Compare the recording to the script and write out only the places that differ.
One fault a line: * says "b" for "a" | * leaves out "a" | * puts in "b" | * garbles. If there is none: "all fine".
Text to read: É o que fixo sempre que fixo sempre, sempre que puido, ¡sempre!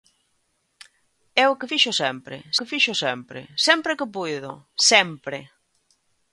all fine